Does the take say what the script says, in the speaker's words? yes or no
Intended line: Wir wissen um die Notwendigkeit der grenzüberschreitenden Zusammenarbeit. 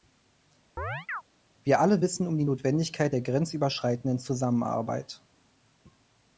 no